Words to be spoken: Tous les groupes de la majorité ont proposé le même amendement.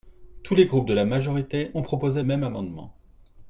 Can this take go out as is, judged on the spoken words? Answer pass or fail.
fail